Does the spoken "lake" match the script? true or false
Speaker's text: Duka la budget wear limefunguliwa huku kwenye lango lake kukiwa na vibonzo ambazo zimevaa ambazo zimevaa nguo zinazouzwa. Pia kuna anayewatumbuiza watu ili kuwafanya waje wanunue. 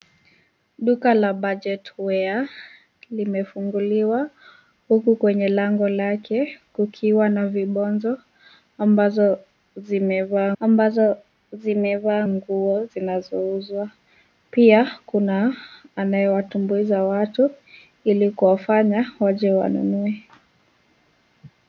true